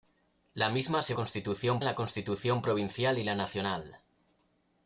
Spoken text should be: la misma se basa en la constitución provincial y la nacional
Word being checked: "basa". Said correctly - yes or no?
no